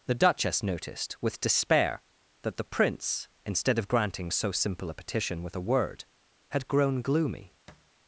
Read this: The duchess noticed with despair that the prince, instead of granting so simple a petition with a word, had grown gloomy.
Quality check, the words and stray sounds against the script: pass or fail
fail